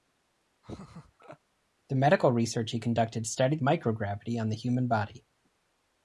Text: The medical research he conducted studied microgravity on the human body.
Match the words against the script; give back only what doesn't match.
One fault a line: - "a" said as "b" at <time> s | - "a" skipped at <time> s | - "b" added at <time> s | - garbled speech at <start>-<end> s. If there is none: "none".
none